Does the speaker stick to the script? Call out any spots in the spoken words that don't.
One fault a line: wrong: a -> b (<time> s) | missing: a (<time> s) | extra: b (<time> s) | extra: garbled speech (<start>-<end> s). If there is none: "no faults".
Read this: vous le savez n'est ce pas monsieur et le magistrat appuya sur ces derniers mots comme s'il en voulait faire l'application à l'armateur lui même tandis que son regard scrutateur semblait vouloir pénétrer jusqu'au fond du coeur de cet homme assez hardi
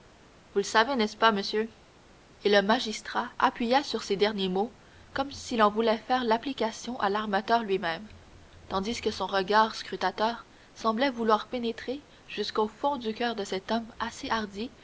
no faults